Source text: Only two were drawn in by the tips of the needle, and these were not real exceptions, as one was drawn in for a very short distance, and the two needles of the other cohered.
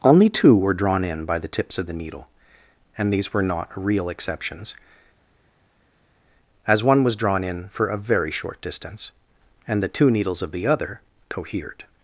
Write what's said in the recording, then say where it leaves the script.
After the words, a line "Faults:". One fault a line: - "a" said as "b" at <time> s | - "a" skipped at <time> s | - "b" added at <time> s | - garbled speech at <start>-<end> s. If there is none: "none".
Only two were drawn in by the tips of the needle, and these were not real exceptions, as one was drawn in for a very short distance, and the two needles of the other cohered.
Faults:
none